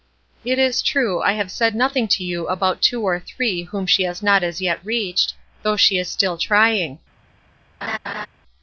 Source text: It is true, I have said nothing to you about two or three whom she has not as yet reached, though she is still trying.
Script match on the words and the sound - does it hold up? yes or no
no